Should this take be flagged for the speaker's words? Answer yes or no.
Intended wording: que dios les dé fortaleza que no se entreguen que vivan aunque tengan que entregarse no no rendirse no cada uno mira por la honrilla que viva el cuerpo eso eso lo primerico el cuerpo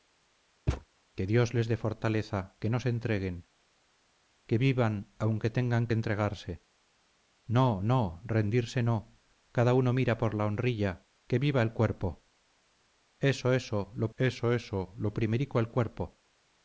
yes